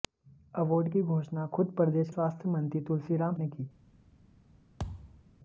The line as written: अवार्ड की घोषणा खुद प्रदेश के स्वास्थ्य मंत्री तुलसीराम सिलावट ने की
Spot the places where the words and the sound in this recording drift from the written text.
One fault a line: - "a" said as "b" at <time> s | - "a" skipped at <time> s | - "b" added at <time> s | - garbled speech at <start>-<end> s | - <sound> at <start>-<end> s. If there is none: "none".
- "के" skipped at 2.1 s
- "सिलावट" skipped at 3.3 s
- thud at 4.8-5.3 s